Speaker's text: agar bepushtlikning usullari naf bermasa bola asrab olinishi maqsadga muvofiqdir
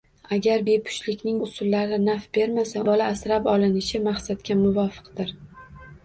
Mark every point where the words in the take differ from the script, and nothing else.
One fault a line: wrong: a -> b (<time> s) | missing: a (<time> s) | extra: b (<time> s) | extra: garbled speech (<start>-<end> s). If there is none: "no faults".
no faults